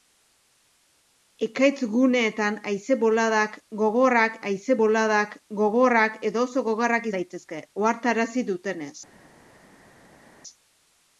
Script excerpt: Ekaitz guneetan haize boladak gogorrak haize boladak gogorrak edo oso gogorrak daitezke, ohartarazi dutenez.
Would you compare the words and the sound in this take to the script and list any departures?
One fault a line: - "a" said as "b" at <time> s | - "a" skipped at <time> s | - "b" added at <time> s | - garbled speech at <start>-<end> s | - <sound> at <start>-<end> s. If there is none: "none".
none